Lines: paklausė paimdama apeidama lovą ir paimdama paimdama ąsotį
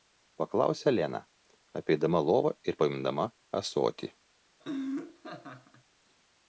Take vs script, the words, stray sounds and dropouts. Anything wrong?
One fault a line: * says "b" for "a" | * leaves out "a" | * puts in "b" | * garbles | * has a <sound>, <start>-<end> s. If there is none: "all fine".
* says "lena" for "paimdama"
* leaves out "paimdama"
* has a laugh, 4.6-5.8 s